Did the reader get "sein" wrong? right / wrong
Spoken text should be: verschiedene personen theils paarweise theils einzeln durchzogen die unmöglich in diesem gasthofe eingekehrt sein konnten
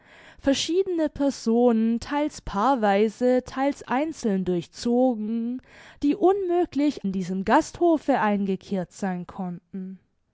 right